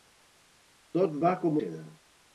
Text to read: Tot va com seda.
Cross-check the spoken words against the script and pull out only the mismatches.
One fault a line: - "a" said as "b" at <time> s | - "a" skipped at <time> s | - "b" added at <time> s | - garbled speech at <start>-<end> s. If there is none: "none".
none